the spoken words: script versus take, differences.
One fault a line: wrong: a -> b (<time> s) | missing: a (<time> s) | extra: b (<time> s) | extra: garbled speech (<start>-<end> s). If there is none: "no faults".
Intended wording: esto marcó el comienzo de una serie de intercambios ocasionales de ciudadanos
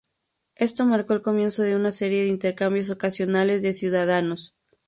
no faults